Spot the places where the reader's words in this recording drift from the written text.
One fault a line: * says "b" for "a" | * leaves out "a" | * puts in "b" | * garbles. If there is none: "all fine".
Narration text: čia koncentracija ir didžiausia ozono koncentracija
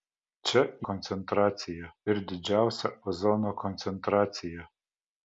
all fine